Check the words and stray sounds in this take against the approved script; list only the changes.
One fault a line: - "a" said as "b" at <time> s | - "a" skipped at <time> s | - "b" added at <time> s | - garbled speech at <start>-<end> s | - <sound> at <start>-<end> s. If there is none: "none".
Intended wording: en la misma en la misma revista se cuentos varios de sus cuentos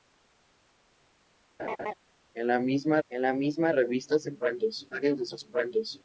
- laugh at 1.6-1.9 s